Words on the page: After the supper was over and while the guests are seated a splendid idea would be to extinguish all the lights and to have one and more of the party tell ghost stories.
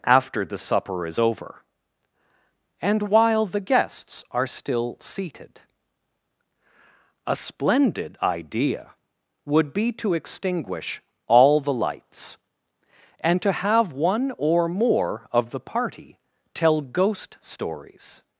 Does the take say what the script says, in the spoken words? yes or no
no